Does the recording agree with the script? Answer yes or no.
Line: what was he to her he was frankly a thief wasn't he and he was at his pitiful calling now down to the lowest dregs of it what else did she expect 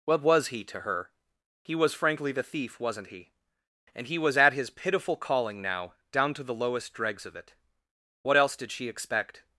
no